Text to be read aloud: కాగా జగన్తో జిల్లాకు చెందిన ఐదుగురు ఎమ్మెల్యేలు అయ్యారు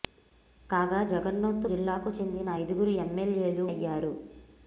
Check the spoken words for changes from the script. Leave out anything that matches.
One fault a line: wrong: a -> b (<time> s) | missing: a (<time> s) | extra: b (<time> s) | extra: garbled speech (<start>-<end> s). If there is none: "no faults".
no faults